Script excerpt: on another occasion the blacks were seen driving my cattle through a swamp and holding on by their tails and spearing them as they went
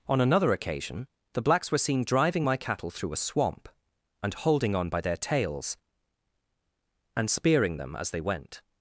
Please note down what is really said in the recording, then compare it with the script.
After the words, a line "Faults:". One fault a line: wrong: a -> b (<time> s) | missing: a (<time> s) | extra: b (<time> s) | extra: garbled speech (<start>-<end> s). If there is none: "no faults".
on another occasion the blacks were seen driving my cattle through a swamp and holding on by their tails and spearing them as they went
Faults:
no faults